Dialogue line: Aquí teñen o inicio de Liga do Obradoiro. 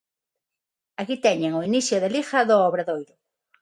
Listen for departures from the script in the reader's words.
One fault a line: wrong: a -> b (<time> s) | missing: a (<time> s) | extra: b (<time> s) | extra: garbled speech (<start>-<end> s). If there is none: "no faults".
no faults